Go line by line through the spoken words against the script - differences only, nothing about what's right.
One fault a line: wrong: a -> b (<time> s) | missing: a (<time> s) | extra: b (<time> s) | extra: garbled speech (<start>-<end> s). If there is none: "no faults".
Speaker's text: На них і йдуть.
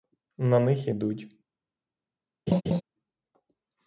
no faults